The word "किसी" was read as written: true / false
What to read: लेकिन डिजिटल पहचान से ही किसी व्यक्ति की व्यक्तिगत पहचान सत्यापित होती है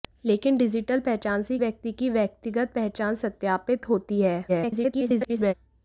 false